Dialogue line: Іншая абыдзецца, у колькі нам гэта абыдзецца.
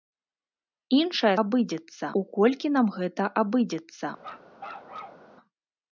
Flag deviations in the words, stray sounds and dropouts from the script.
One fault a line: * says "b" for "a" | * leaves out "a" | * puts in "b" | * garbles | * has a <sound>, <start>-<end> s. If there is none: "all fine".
* has a bark, 4.2-5.3 s